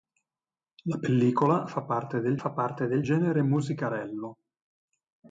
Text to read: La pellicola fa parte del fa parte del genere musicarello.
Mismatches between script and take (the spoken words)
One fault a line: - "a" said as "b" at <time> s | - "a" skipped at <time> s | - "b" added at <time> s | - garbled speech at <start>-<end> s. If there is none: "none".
none